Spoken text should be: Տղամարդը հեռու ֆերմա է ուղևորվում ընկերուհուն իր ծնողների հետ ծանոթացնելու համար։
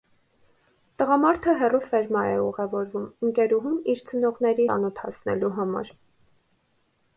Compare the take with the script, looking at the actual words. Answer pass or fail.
fail